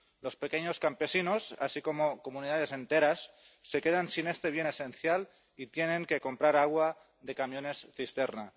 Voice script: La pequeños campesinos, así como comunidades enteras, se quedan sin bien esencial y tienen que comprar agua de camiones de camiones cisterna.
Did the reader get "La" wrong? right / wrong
wrong